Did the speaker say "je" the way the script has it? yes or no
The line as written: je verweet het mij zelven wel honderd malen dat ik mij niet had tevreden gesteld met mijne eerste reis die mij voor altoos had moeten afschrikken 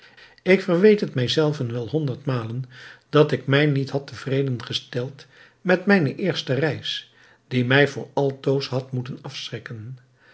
no